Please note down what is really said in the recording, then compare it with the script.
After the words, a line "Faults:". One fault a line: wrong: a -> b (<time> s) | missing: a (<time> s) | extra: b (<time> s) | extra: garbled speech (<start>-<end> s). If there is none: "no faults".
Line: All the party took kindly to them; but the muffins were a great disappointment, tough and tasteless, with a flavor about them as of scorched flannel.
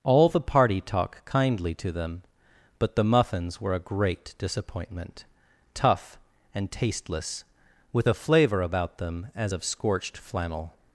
All the party talk kindly to them; but the muffins were a great disappointment, tough and tasteless, with a flavor about them as of scorched flannel.
Faults:
wrong: took -> talk (0.8 s)